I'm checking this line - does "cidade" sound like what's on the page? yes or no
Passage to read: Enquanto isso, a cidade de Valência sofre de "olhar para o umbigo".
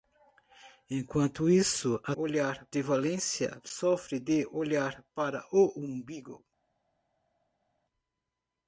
no